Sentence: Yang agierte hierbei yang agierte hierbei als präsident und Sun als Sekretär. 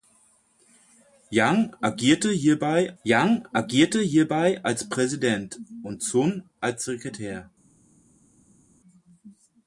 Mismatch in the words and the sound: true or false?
false